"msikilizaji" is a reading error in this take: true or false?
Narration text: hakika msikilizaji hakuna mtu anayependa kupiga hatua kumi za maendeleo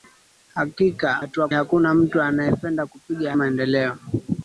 true